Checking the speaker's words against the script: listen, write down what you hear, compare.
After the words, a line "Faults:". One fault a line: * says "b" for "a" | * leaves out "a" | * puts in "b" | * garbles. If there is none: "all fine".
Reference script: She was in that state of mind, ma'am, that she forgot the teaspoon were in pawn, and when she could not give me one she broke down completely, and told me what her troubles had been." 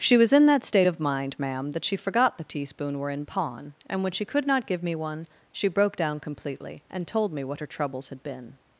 She was in that state of mind, ma'am, that she forgot the teaspoon were in pawn, and when she could not give me one she broke down completely, and told me what her troubles had been."
Faults:
all fine